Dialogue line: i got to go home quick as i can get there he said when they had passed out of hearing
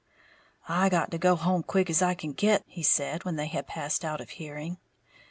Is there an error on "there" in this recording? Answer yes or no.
yes